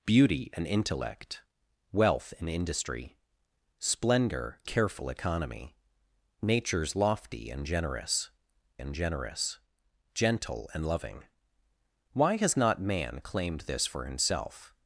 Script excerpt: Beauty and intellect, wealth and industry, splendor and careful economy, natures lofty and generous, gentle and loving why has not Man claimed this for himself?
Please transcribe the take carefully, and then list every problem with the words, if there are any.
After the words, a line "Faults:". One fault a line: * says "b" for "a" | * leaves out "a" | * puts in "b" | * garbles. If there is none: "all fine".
Beauty and intellect, wealth and industry, splendor careful economy, natures lofty and generous and generous, gentle and loving why has not Man claimed this for himself?
Faults:
* leaves out "and"
* puts in "and generous"